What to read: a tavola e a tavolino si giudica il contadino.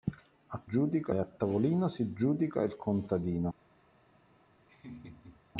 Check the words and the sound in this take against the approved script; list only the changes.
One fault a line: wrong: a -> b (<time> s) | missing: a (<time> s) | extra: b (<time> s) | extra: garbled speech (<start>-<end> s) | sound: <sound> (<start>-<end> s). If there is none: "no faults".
wrong: tavola -> giudica (0.6 s)
sound: laugh (4.7-5.4 s)